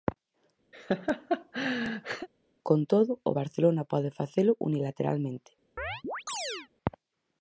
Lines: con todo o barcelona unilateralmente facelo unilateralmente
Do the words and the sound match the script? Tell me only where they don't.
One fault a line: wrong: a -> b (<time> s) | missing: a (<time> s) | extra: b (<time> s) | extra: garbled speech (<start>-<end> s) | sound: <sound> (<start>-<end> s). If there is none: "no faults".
sound: laugh (0.7-2.3 s)
wrong: unilateralmente -> pode (3.9 s)
sound: chirp (5.8-6.7 s)